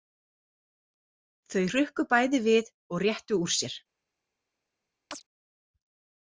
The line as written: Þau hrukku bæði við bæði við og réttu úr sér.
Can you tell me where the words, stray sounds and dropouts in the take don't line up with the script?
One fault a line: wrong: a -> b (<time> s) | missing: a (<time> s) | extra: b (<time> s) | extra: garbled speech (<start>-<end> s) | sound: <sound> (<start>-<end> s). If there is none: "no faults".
missing: bæði við (2.7 s)
sound: chirp (5.1-5.2 s)